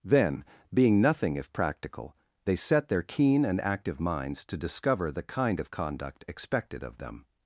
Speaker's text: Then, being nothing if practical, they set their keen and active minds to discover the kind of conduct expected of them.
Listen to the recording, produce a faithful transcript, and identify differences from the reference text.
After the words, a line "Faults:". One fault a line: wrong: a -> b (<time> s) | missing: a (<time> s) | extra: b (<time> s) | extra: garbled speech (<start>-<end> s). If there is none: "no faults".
Then, being nothing if practical, they set their keen and active minds to discover the kind of conduct expected of them.
Faults:
no faults